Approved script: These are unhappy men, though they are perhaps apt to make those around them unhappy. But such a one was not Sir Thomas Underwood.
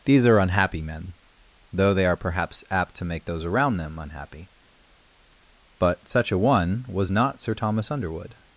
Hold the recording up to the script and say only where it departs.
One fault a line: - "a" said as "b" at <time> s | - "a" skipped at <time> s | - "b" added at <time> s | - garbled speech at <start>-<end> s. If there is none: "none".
none